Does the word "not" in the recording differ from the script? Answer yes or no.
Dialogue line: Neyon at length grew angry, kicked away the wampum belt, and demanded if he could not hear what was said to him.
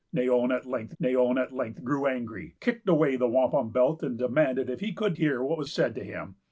yes